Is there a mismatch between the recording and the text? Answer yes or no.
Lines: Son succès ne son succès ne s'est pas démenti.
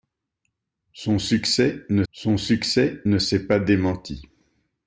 no